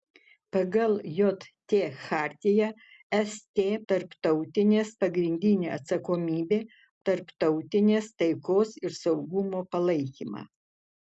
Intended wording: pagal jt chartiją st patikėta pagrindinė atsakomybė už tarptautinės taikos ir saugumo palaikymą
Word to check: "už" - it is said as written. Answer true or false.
false